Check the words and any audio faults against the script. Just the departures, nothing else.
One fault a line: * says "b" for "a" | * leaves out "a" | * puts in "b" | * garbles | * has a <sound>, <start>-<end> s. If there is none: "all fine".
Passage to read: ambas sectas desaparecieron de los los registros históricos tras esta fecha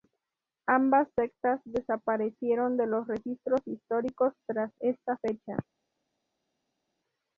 * leaves out "los"